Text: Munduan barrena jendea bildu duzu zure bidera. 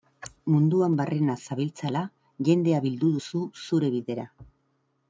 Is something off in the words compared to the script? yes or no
yes